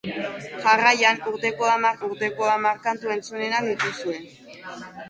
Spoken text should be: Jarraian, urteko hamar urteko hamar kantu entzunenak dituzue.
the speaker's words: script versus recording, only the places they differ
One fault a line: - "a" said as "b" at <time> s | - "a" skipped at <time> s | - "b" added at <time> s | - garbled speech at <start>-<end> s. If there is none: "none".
none